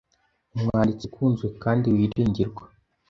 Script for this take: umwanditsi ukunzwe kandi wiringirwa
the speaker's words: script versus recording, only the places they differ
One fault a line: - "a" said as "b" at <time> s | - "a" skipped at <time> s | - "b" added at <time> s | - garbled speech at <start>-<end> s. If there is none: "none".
none